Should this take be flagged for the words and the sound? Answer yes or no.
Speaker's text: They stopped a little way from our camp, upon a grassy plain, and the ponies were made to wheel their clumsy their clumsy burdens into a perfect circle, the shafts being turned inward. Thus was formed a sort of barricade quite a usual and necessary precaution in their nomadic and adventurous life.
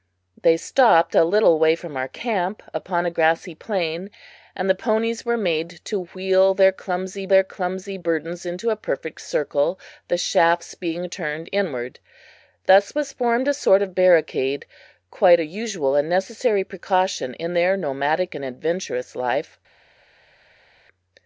no